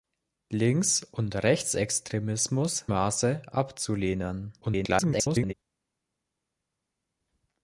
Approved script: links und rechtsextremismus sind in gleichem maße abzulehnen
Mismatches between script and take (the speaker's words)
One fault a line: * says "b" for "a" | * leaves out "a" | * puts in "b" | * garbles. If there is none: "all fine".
* leaves out "sind in gleichem"
* garbles